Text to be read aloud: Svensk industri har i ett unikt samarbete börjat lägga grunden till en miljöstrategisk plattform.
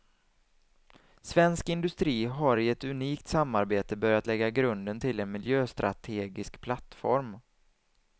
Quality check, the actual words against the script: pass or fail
pass